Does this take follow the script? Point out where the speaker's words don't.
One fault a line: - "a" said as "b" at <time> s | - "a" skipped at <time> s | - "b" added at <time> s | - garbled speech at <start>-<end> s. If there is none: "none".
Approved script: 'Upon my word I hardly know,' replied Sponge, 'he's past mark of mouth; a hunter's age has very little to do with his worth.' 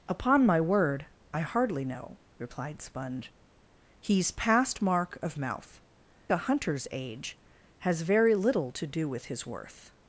none